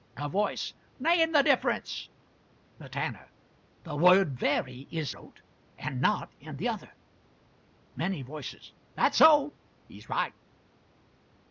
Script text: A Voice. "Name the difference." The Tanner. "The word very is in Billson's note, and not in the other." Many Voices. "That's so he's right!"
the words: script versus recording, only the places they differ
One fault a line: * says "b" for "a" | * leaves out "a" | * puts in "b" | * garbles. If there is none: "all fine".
* leaves out "in Billson's"